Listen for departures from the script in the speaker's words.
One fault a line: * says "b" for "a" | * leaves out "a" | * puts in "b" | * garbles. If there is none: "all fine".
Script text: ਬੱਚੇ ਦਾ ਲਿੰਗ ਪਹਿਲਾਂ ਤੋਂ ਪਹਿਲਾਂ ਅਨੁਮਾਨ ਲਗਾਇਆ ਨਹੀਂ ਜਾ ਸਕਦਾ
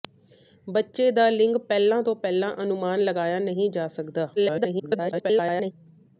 * garbles